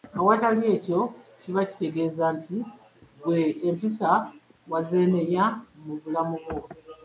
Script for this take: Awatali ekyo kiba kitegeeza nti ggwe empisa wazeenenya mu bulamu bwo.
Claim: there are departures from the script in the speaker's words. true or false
false